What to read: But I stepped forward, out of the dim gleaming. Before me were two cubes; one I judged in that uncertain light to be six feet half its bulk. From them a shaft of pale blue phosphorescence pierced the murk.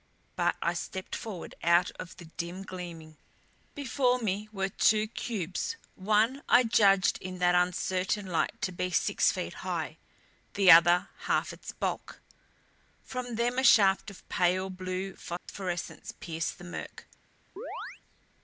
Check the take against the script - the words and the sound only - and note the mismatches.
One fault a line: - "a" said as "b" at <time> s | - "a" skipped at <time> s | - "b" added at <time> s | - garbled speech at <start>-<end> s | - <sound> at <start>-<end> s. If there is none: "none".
- "high the other" added at 9.5 s
- dropout at 15.4-15.5 s
- chirp at 17.6-18.0 s